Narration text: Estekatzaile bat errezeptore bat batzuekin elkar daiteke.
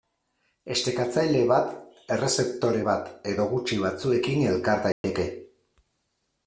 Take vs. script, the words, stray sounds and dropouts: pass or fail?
fail